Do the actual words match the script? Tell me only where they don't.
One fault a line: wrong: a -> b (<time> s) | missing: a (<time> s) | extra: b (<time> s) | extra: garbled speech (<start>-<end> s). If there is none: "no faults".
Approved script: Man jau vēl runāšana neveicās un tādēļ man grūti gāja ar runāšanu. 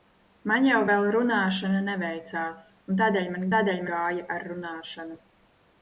wrong: grūti -> tādēļ (3.5 s)